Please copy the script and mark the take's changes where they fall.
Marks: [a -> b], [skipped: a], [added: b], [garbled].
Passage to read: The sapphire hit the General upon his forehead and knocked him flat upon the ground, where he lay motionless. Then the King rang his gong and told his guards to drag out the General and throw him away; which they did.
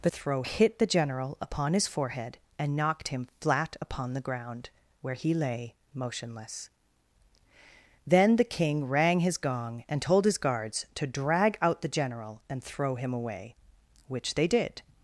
The [sapphire -> throw] hit the General upon his forehead and knocked him flat upon the ground, where he lay motionless. Then the King rang his gong and told his guards to drag out the General and throw him away; which they did.